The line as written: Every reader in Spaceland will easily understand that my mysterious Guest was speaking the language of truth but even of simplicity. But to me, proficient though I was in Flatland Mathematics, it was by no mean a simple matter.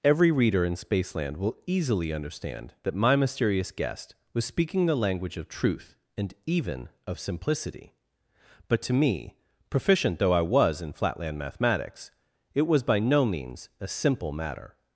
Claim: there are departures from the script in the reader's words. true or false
true